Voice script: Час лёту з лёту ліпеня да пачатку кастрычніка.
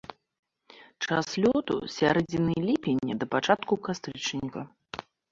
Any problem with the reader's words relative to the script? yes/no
yes